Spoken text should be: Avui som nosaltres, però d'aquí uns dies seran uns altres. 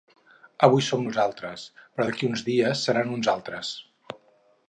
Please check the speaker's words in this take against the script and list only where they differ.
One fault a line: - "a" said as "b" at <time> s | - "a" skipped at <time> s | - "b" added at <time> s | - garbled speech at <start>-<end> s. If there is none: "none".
none